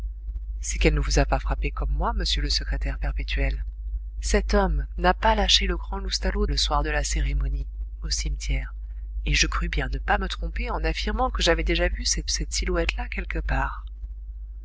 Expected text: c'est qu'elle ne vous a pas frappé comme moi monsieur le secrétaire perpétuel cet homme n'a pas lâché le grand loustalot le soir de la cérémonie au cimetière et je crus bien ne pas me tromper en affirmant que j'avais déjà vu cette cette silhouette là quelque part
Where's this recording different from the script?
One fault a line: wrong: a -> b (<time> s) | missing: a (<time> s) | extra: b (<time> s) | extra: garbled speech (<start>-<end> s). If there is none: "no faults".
no faults